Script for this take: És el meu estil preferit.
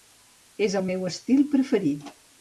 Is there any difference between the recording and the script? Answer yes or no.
no